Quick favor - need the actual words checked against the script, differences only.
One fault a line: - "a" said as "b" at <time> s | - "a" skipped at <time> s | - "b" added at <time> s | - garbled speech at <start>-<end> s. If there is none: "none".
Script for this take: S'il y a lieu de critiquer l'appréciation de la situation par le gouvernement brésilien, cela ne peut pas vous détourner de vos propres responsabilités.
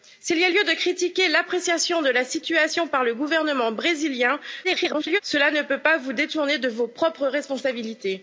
- garbled speech at 4.6-5.2 s